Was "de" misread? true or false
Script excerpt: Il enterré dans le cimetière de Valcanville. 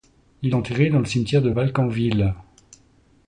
false